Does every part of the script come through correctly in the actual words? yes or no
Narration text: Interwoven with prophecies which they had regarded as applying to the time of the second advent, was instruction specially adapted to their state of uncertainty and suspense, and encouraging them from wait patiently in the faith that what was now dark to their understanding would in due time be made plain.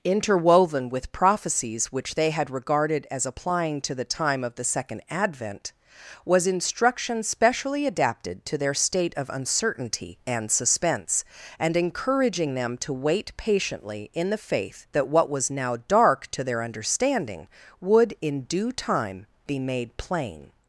no